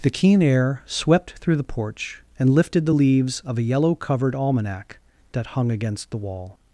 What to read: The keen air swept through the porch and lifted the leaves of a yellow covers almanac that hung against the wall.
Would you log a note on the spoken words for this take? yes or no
yes